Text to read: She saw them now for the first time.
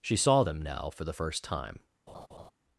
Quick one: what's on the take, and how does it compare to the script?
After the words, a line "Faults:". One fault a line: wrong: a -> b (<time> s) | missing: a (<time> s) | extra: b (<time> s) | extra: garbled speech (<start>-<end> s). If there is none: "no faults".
She saw them now for the first time.
Faults:
no faults